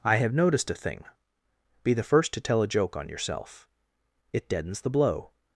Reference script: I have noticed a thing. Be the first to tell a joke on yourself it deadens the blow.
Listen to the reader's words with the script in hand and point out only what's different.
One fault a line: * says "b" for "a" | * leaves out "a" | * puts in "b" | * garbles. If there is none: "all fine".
all fine